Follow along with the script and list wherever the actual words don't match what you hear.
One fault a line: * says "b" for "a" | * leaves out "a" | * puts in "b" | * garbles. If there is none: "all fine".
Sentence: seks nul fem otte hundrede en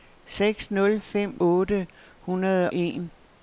all fine